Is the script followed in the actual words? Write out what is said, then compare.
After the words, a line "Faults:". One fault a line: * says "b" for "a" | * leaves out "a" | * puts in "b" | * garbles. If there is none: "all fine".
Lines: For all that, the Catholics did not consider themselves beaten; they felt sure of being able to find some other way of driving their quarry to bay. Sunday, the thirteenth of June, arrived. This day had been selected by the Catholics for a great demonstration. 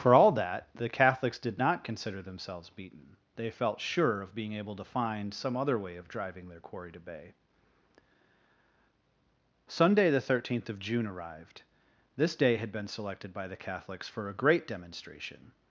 For all that, the Catholics did not consider themselves beaten; they felt sure of being able to find some other way of driving their quarry to bay. Sunday, the thirteenth of June, arrived. This day had been selected by the Catholics for a great demonstration.
Faults:
all fine